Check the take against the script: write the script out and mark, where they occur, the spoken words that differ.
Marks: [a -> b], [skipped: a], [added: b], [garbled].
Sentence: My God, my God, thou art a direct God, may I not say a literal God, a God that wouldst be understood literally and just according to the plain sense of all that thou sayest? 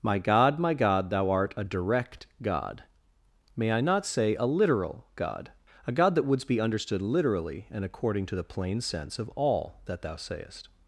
My God, my God, thou art a direct God, may I not say a literal God, a God that wouldst be understood literally and [skipped: just] according to the plain sense of all that thou sayest?